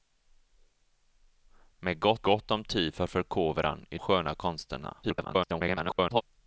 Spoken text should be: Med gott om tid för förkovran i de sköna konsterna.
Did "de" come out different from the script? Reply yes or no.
yes